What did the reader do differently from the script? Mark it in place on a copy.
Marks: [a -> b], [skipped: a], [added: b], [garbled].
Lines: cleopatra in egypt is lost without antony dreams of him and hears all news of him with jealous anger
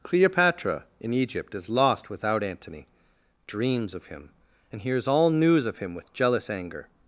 cleopatra in egypt is lost without antony dreams of him and hears all news of him with jealous anger